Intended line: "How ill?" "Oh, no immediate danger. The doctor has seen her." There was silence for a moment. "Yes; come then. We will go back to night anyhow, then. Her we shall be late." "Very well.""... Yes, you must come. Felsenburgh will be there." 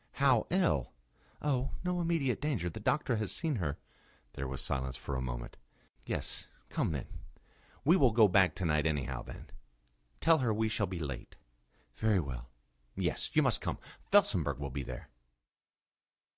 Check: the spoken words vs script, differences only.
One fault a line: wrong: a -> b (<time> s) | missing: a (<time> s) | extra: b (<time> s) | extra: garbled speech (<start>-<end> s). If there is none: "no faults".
extra: Tell (10.2 s)